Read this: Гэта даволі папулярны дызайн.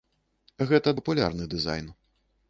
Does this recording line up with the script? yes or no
no